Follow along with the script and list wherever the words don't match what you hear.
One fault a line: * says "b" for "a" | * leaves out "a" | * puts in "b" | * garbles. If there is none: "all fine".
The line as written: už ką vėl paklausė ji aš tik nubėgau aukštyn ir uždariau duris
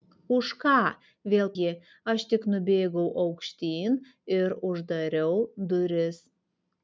* leaves out "paklausė"